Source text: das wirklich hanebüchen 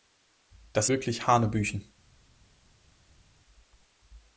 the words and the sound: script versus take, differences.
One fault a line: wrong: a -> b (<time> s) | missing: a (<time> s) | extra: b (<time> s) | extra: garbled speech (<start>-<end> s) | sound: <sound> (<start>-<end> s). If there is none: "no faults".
no faults